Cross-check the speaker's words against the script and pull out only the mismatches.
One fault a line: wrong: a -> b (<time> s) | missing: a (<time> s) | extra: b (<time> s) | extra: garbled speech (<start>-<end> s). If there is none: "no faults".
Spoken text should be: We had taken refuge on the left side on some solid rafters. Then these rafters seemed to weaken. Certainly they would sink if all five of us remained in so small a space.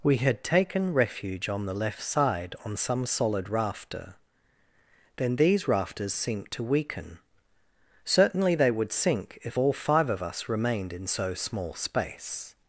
wrong: rafters -> rafter (3.5 s)
missing: a (11.7 s)